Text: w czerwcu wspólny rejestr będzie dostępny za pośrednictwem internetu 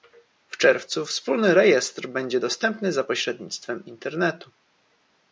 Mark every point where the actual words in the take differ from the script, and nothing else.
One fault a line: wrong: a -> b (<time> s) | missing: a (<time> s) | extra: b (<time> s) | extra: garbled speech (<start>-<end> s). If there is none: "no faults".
no faults